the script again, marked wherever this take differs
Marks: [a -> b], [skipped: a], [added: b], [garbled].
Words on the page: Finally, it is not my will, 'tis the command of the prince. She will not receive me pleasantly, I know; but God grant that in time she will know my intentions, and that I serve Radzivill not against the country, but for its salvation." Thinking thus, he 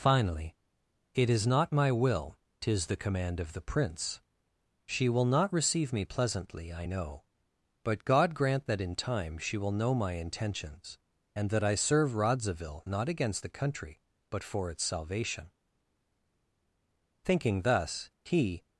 Finally, it is not my will, 'tis the command of the prince. She will not receive me pleasantly, I know; but God grant that in time she will know my intentions, and that I serve Radzivill not against the country, but for its salvation." Thinking thus, he